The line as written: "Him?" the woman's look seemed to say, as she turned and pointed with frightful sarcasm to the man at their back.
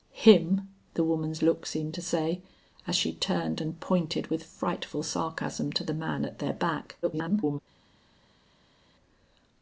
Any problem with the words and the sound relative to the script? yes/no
yes